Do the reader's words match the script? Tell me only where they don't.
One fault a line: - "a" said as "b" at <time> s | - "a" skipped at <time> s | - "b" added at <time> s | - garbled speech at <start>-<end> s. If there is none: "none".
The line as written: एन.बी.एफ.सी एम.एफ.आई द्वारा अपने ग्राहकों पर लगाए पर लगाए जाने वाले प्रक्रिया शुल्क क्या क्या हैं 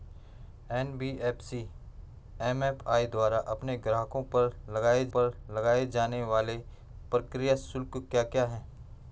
none